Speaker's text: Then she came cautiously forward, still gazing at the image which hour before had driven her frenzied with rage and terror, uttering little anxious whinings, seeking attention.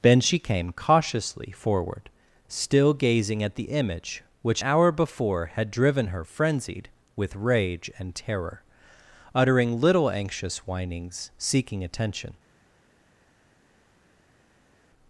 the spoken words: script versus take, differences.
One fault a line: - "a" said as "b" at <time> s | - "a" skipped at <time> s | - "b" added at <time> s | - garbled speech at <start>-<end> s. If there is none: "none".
none